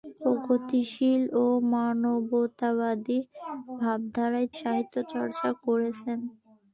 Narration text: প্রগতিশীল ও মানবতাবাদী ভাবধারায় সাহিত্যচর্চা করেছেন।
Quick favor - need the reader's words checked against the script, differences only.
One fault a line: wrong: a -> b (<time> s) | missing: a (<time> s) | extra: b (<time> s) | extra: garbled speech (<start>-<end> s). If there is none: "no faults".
no faults